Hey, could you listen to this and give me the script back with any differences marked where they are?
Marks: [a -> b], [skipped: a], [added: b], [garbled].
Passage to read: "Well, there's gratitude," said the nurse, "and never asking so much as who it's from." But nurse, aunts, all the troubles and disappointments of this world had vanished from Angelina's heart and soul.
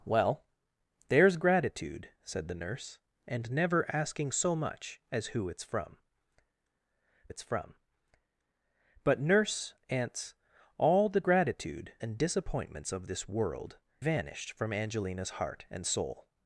"Well, there's gratitude," said the nurse, "and never asking so much as who it's from." [added: it's from] But nurse, aunts, all the [troubles -> gratitude] and disappointments of this world [skipped: had] vanished from Angelina's heart and soul.